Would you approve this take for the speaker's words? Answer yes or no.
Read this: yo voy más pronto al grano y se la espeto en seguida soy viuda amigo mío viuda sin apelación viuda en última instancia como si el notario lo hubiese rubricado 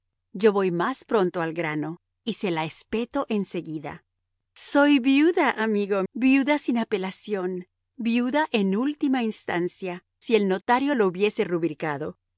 no